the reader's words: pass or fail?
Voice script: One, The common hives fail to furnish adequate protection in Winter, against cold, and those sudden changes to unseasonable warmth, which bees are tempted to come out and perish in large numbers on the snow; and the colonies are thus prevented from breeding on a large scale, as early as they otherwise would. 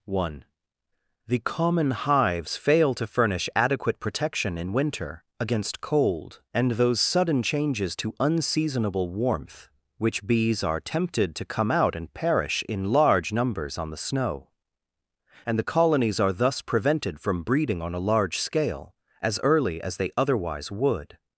pass